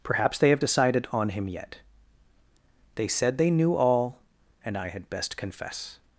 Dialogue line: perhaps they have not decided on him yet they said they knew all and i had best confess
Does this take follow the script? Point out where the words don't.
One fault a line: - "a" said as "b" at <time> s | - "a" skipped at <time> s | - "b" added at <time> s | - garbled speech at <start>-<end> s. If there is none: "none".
- "not" skipped at 0.6 s